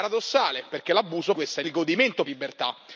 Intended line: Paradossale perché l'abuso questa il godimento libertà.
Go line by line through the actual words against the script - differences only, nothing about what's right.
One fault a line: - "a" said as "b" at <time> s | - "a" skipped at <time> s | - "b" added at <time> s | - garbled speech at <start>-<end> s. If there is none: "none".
none